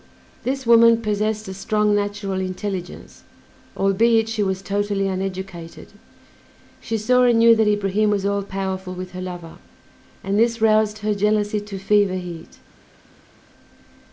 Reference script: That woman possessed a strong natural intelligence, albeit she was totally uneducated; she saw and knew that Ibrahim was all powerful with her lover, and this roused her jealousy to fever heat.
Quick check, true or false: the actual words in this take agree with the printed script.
false